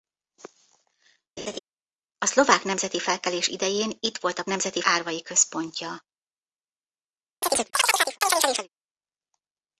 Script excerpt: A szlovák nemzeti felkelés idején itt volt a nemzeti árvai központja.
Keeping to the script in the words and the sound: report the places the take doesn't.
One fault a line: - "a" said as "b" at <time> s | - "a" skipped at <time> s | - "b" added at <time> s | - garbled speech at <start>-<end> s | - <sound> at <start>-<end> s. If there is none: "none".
- laugh at 1.4-1.6 s
- chirp at 7.4-8.7 s